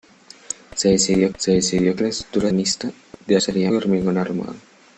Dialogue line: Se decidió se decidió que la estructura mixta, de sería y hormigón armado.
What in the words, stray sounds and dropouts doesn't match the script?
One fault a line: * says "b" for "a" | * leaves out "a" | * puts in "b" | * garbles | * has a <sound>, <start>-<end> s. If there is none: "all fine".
all fine